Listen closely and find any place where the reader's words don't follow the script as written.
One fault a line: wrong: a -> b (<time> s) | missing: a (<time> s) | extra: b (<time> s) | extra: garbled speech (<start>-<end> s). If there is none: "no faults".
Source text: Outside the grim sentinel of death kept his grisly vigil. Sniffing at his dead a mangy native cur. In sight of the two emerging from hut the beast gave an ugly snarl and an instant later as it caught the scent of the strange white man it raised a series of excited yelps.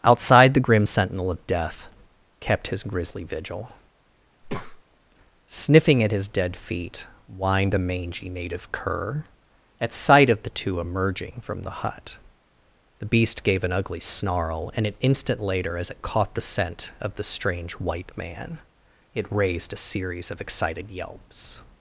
extra: feet whined (6.6 s)
wrong: In -> At (9.8 s)
extra: the (11.6 s)